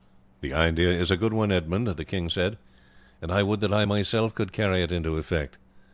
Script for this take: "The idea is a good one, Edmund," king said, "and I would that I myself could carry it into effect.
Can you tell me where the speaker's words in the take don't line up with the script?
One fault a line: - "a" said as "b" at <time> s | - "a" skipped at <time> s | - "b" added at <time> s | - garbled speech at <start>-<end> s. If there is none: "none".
- "the" added at 1.9 s